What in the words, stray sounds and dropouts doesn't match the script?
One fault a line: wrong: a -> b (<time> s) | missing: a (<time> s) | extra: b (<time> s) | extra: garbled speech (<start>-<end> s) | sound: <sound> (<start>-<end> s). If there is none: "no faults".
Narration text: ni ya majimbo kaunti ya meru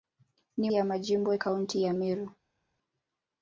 no faults